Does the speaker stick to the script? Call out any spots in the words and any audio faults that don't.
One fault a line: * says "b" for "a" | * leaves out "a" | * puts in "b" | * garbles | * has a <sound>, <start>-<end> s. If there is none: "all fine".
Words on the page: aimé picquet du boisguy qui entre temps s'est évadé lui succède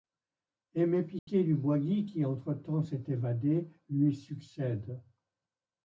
* has a dropout, 1.2-1.3 s